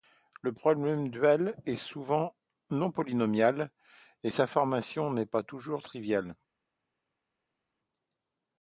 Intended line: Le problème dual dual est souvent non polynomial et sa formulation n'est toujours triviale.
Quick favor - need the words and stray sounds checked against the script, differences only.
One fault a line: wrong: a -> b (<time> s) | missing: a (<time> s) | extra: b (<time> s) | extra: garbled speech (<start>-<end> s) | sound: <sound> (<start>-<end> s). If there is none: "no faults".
missing: dual (1.6 s)
extra: pas (5.2 s)